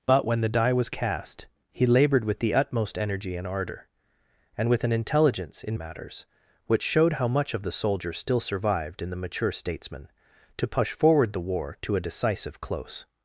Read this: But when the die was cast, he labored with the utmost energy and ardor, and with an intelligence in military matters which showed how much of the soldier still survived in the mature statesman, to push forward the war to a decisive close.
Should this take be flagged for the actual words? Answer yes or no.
yes